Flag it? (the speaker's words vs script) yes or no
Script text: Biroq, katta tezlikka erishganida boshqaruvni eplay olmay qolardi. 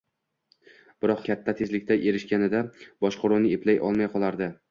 no